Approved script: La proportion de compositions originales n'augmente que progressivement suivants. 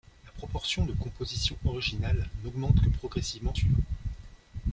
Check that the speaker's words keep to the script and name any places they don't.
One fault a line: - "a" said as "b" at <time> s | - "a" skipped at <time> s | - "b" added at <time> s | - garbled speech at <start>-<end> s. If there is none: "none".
none